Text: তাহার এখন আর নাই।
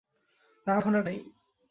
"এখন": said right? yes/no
yes